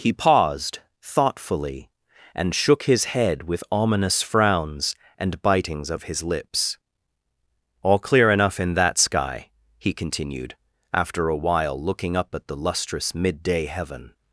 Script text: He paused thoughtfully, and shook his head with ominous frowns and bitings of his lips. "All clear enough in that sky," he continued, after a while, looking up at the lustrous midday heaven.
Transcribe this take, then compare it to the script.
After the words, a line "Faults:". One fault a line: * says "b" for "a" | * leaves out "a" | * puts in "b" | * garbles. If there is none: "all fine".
He paused thoughtfully, and shook his head with ominous frowns and bitings of his lips. "All clear enough in that sky," he continued, after a while, looking up at the lustrous midday heaven.
Faults:
all fine